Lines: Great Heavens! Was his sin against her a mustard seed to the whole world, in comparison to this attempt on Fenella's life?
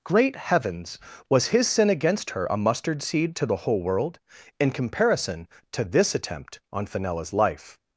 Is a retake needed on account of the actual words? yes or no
no